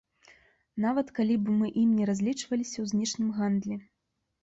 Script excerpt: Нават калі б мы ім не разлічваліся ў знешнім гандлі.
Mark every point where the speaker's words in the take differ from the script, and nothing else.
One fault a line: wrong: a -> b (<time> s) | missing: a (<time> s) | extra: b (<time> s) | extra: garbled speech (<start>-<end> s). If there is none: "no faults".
no faults